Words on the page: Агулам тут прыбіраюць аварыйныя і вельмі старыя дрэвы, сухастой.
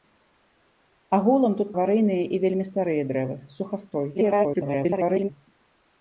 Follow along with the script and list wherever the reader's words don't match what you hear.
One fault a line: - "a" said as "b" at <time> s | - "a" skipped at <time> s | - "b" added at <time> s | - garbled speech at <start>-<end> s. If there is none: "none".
- "прыбіраюць" skipped at 1.7 s
- garbled speech at 4.1-5.3 s